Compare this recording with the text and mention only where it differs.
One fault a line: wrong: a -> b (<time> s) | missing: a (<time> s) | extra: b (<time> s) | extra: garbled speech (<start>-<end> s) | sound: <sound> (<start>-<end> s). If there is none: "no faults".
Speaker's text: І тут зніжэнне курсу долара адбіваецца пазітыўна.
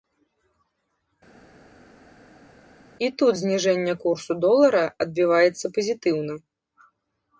no faults